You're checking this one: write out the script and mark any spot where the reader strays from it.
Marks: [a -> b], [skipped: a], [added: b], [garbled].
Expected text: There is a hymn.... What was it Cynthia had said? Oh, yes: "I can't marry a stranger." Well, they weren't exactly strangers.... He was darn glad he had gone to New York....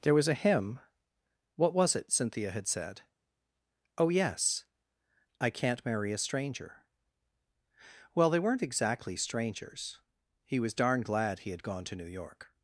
There [is -> was] a hymn.... What was it Cynthia had said? Oh, yes: "I can't marry a stranger." Well, they weren't exactly strangers.... He was darn glad he had gone to New York....